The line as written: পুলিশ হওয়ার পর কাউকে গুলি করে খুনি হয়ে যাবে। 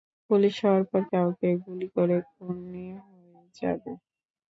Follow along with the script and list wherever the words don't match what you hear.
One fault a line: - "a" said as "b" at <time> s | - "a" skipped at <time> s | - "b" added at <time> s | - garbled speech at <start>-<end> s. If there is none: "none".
none